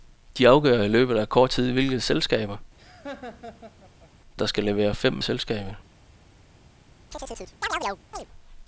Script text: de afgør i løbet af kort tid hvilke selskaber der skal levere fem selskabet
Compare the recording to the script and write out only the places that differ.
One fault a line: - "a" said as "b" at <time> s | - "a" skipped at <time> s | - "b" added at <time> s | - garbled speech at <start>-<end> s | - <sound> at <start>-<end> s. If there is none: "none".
- laugh at 2.8-4.1 s
- chirp at 7.1-8.3 s